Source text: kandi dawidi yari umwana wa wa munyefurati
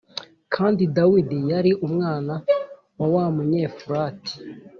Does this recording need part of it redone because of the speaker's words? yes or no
no